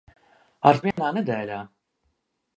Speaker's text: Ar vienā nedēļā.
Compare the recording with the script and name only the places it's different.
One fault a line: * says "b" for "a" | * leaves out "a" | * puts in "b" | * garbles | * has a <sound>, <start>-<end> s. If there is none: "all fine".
* has a dropout, 0.9-1.0 s